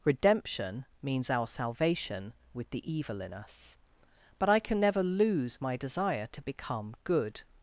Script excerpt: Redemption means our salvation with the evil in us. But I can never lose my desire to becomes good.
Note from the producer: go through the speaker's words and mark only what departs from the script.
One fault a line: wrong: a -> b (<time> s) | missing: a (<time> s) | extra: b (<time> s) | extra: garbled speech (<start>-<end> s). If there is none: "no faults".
wrong: becomes -> become (6.4 s)